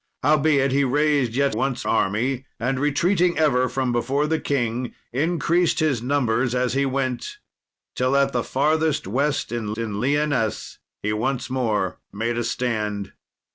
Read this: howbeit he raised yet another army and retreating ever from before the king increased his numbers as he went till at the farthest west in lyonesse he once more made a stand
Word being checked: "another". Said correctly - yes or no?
no